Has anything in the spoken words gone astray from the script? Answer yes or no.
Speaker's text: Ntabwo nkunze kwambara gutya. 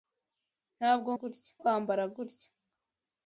yes